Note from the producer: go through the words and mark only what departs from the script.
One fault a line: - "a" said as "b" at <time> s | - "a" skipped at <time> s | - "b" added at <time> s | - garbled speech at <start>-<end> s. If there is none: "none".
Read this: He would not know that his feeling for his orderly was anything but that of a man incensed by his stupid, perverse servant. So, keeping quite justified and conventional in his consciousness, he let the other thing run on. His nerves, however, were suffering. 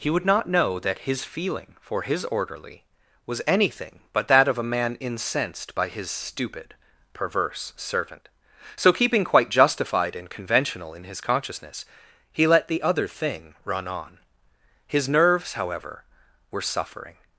none